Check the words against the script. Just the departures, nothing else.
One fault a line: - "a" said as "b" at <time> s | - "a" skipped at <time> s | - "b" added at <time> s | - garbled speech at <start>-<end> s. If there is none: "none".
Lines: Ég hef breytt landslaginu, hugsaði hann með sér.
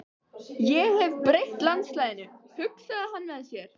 none